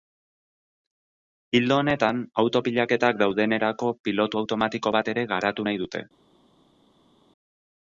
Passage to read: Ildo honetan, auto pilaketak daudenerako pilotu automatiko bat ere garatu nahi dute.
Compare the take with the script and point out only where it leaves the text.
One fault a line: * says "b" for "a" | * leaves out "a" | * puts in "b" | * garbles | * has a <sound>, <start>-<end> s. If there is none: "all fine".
all fine